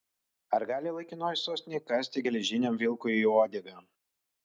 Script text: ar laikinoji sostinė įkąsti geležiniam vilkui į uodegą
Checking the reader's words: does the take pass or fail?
fail